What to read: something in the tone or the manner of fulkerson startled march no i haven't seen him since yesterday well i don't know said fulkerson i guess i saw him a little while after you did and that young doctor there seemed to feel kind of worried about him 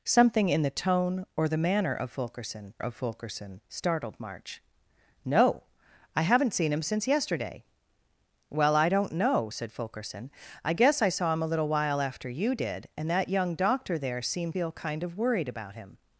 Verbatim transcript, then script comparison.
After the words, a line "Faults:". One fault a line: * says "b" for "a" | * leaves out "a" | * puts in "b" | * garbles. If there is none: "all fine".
something in the tone or the manner of fulkerson of fulkerson startled march no i haven't seen him since yesterday well i don't know said fulkerson i guess i saw him a little while after you did and that young doctor there seemed feel kind of worried about him
Faults:
* puts in "of fulkerson"
* leaves out "to"